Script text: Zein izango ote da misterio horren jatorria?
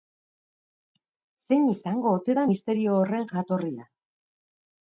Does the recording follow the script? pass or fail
pass